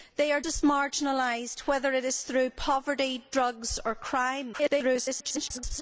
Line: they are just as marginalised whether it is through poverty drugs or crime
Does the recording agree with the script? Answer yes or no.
no